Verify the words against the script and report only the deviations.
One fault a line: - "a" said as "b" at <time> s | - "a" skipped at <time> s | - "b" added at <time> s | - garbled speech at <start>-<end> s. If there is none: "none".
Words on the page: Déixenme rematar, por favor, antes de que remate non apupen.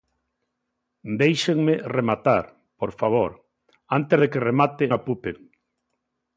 - "non" skipped at 4.9 s